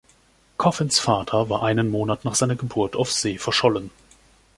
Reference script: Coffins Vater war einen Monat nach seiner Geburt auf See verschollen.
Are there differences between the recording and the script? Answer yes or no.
no